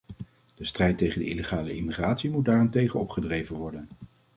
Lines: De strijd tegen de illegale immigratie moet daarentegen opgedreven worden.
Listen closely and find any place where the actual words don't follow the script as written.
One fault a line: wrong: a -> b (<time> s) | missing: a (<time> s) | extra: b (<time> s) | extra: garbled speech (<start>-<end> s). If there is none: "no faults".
no faults